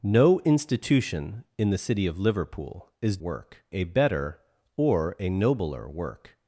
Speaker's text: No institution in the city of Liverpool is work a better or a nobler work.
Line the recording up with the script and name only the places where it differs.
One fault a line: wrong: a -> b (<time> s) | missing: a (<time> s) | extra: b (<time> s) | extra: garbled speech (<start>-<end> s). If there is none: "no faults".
no faults